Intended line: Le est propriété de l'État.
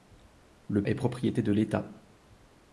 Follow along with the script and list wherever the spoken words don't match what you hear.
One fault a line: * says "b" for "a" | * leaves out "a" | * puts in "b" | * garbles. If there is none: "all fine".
all fine